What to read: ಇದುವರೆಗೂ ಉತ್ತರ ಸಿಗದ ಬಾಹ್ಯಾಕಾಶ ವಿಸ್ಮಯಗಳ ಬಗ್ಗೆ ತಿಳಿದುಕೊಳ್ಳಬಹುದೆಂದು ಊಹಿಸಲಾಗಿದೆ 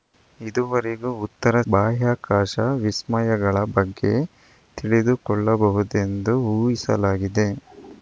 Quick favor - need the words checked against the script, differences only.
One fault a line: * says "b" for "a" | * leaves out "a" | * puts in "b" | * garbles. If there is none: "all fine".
* leaves out "ಸಿಗದ"